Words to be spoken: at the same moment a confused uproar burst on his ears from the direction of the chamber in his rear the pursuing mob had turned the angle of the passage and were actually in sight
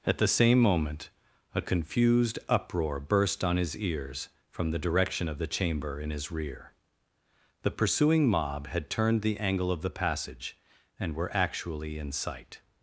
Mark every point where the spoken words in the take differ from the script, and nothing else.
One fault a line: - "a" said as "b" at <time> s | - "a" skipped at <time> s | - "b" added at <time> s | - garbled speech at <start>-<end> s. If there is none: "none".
none